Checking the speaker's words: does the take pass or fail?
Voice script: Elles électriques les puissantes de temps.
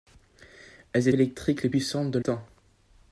pass